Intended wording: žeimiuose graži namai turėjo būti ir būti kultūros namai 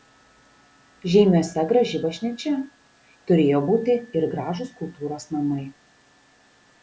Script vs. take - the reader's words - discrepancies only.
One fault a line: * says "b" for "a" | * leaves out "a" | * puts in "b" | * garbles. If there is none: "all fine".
* says "bažnyčia" for "namai"
* says "gražūs" for "būti"